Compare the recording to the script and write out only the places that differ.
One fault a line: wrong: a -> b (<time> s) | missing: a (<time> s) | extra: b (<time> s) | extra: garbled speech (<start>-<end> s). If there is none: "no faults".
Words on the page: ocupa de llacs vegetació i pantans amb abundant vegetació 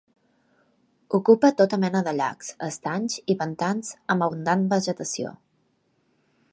extra: tota mena (1.6 s)
wrong: vegetació -> estanys (2.7 s)